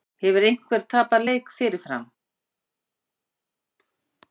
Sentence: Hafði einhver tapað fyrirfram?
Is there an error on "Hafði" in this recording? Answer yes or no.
yes